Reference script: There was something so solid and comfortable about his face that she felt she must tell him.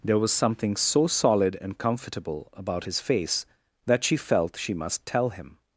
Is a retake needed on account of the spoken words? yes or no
no